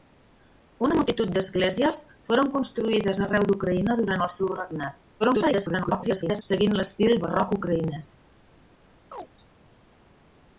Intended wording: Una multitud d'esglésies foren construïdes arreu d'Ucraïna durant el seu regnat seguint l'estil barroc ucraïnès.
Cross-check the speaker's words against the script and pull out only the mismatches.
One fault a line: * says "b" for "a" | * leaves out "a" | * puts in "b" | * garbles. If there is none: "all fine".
* garbles